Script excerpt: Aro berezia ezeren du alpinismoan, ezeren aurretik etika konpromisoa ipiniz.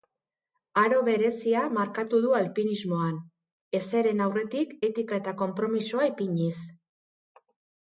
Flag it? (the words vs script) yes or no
yes